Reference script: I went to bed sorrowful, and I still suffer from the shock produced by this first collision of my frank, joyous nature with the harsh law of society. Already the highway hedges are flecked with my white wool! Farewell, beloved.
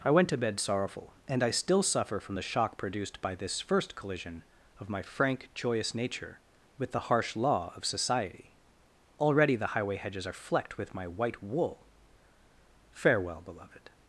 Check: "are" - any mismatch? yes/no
no